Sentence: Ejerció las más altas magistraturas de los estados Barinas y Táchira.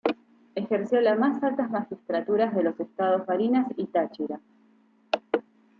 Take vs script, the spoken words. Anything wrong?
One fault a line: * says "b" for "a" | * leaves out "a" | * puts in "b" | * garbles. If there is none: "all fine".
all fine